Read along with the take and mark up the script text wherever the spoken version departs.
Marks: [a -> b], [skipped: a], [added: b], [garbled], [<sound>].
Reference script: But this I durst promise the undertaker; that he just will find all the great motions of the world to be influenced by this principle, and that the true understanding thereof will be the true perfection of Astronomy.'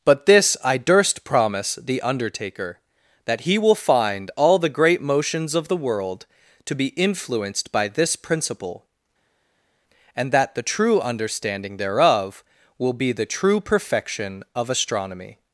But this I durst promise the undertaker; that he [skipped: just] will find all the great motions of the world to be influenced by this principle, and that the true understanding thereof will be the true perfection of Astronomy.'